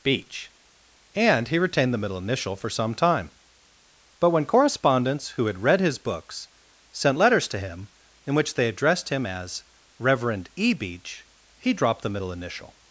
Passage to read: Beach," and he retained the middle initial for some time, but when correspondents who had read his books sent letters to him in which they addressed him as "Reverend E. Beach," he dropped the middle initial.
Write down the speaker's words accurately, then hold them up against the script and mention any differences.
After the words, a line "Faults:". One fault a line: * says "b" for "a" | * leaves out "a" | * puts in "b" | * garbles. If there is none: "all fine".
Beach," and he retained the middle initial for some time, but when correspondents who had read his books sent letters to him in which they addressed him as "Reverend E. Beach," he dropped the middle initial.
Faults:
all fine